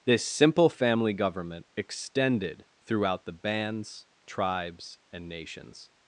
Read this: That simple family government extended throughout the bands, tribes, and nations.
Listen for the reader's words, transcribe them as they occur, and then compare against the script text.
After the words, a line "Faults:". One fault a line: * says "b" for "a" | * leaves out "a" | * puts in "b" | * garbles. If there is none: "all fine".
This simple family government extended throughout the bands, tribes, and nations.
Faults:
* says "This" for "That"